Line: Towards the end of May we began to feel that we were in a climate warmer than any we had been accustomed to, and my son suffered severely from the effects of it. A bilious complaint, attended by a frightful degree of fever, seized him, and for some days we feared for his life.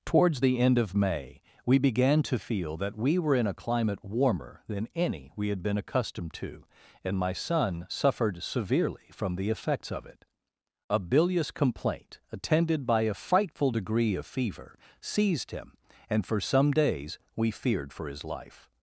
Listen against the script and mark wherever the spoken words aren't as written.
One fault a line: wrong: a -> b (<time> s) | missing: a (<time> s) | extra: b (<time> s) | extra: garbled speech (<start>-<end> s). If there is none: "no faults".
no faults